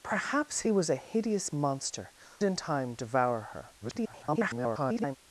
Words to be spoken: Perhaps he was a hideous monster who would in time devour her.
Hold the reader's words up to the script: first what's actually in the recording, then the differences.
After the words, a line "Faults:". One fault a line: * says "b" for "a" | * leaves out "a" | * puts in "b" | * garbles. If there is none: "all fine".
Perhaps he was a hideous monster in time devour her. [garbled]
Faults:
* leaves out "who would"
* garbles